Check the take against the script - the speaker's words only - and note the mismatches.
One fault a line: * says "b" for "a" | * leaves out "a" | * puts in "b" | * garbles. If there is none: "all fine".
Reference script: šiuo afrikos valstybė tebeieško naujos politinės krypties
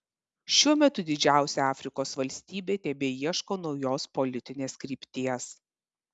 * puts in "metu didžiausia"